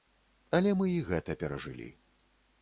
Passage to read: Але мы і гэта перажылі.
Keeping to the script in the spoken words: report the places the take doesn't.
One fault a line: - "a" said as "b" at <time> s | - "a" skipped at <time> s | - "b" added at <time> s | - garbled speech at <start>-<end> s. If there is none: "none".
none